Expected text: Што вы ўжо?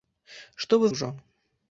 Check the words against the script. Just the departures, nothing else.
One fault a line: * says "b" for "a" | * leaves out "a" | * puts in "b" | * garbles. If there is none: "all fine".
all fine